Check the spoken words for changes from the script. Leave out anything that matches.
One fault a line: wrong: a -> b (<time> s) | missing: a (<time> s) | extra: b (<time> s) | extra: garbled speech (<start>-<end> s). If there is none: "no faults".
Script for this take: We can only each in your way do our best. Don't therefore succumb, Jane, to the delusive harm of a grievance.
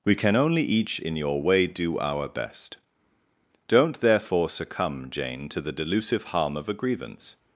no faults